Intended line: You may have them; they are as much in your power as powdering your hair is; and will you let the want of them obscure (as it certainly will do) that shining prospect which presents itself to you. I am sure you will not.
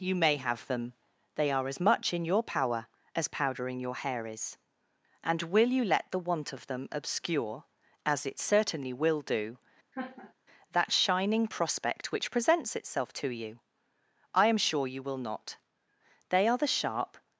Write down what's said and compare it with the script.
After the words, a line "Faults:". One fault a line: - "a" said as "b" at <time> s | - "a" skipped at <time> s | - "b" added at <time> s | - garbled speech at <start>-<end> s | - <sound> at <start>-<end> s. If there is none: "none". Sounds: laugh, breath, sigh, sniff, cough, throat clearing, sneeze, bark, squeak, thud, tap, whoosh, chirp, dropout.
You may have them; they are as much in your power as powdering your hair is; and will you let the want of them obscure (as it certainly will do) that shining prospect which presents itself to you. I am sure you will not. They are the sharp
Faults:
- laugh at 9.9-10.3 s
- "They are the sharp" added at 16.3 s